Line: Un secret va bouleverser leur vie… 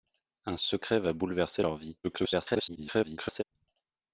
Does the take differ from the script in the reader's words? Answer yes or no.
yes